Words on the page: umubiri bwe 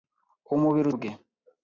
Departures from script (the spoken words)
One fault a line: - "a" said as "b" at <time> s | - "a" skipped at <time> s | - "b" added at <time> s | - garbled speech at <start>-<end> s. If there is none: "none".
none